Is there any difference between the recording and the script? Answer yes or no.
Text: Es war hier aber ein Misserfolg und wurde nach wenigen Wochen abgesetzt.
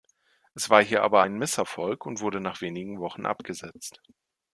no